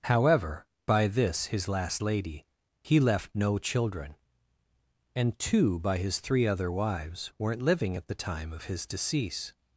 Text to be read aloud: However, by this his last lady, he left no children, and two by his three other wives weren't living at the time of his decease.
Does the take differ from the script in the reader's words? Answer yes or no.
no